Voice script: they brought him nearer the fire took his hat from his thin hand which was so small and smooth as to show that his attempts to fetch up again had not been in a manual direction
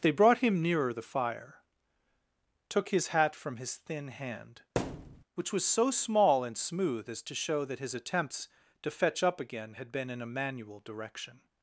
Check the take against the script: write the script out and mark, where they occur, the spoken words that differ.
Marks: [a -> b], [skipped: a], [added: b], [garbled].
they brought him nearer the fire took his hat from his thin hand which was so small and smooth as to show that his attempts to fetch up again had [skipped: not] been in a manual direction